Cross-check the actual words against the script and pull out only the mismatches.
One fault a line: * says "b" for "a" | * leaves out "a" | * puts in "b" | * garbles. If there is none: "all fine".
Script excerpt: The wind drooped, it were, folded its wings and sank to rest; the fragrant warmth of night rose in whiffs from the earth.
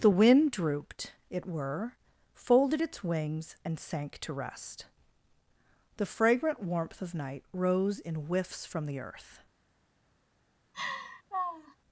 all fine